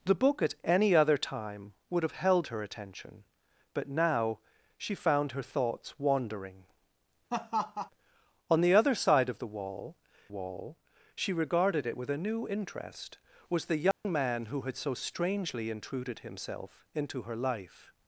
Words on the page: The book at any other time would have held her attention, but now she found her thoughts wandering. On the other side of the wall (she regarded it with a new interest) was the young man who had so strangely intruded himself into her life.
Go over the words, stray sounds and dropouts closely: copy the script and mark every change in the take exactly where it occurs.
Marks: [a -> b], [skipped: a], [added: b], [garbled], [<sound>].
The book at any other time would have held her attention, but now she found her thoughts wandering. [laugh] On the other side of the wall [added: wall] (she regarded it with a new interest) was the young [dropout] man who had so strangely intruded himself into her life.